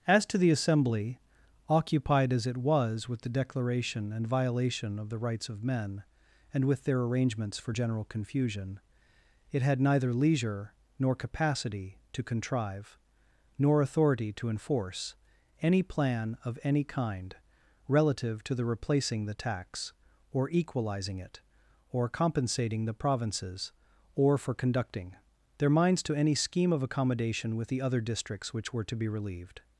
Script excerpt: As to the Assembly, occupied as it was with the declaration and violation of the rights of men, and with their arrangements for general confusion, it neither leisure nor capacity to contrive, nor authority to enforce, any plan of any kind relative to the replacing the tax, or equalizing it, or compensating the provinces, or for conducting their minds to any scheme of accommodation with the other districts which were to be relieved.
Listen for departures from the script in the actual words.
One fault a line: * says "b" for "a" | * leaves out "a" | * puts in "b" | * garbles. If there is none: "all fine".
* puts in "had"